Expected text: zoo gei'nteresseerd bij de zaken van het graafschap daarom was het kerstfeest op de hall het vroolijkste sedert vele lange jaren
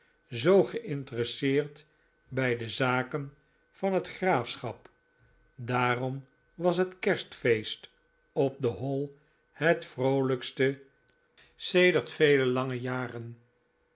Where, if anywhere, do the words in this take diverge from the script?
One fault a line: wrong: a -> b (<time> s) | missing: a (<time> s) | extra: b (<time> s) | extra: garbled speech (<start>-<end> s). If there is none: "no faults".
no faults